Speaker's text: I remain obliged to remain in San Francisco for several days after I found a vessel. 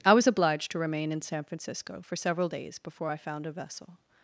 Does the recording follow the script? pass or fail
fail